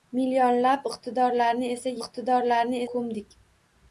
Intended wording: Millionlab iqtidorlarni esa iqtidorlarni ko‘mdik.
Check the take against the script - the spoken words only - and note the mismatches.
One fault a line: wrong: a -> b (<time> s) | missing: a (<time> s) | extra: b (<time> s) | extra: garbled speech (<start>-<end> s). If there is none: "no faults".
no faults